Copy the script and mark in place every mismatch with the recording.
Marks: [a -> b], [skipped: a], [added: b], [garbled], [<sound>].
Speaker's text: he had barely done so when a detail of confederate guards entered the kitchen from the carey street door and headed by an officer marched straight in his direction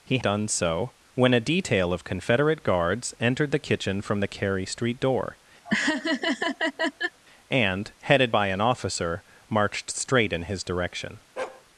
he [skipped: had barely] done so when a detail of confederate guards entered the kitchen from the carey street door [laugh] and headed by an officer marched straight in his direction [bark]